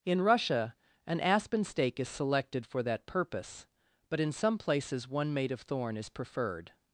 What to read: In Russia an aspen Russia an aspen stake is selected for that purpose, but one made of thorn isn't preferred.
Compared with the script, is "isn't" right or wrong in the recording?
wrong